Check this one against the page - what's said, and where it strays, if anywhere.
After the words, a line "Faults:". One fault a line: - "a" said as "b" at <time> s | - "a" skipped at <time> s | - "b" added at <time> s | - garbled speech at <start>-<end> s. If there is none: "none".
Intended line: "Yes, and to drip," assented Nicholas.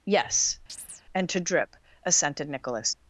"Yes, and to drip," assented Nicholas.
Faults:
none